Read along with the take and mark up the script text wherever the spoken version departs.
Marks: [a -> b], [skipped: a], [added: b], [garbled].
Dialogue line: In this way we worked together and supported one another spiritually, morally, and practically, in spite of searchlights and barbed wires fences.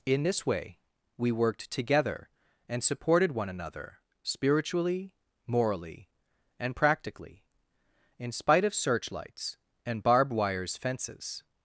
In this way we worked together and supported one another spiritually, morally, and practically, in spite of searchlights and barbed wires fences.